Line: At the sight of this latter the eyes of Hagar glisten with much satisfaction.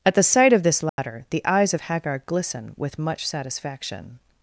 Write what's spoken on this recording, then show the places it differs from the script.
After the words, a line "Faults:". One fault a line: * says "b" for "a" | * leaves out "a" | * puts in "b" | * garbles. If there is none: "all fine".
At the sight of this latter the eyes of Hagar glisten with much satisfaction.
Faults:
all fine